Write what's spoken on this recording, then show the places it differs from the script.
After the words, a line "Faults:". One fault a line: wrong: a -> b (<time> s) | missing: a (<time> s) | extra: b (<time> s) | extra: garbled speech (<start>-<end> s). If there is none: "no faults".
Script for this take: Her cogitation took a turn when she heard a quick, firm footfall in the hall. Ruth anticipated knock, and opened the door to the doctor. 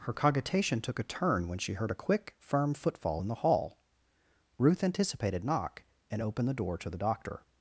Her cogitation took a turn when she heard a quick, firm footfall in the hall. Ruth anticipated knock, and opened the door to the doctor.
Faults:
no faults